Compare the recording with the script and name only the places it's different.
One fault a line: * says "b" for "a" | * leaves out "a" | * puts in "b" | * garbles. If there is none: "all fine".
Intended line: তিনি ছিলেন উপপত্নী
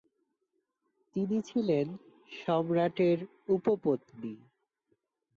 * puts in "সম্রাটের"